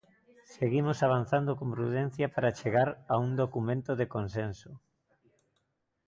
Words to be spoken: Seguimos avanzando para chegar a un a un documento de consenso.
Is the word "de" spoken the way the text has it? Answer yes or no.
yes